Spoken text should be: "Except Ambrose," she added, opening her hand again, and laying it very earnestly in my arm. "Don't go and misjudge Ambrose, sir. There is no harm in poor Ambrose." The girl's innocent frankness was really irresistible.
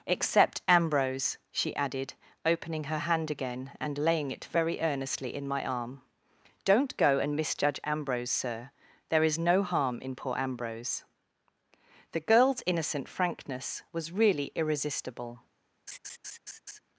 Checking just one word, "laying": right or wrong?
right